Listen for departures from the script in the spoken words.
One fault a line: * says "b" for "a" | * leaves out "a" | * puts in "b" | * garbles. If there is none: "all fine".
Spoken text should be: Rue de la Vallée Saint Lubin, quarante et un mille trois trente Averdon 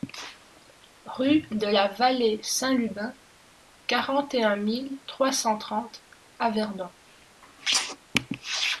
* puts in "cent"